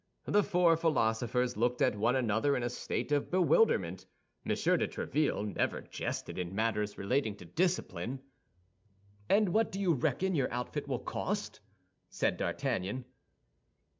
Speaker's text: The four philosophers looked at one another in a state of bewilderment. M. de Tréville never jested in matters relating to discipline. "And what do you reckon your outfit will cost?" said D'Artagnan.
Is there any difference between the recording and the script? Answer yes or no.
no